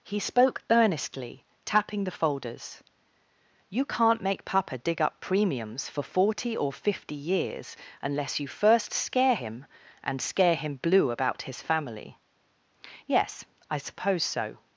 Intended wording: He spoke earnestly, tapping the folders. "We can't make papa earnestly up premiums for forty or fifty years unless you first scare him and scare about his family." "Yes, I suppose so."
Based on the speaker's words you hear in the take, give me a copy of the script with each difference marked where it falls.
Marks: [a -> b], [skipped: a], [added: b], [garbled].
He spoke earnestly, tapping the folders. ["We -> You] can't make papa [earnestly -> dig] up premiums for forty or fifty years unless you first scare him and scare [added: him blue] about his family." "Yes, I suppose so."